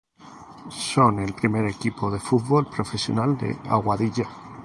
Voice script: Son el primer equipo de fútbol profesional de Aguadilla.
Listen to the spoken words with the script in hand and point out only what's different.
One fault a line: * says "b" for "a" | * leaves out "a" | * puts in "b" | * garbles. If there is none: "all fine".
all fine